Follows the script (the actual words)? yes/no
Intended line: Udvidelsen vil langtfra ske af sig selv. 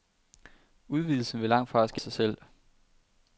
no